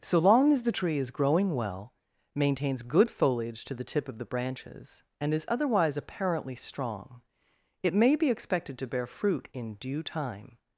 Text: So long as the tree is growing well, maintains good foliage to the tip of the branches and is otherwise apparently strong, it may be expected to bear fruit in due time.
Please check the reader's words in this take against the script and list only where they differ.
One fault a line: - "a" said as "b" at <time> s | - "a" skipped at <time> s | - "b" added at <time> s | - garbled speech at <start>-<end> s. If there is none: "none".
none